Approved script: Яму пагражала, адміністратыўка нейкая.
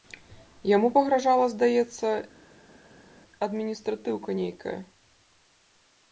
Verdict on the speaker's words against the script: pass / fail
fail